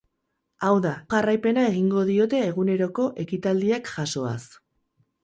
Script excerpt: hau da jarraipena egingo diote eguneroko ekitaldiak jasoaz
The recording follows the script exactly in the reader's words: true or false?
true